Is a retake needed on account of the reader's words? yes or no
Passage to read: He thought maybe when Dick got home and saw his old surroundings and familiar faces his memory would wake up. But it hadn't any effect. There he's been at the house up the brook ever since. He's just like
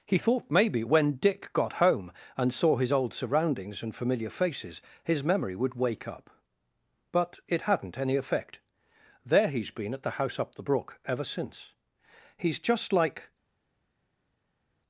no